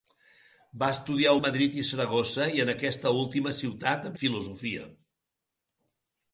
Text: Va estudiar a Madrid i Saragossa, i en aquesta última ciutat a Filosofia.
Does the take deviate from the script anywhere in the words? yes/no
no